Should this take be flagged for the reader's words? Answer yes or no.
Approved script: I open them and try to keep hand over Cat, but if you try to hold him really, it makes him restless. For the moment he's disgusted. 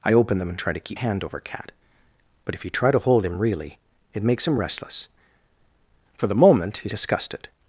no